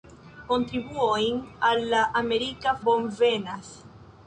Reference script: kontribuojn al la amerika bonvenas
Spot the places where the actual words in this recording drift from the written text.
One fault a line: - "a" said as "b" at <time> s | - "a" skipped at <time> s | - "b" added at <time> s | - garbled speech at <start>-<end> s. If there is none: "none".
none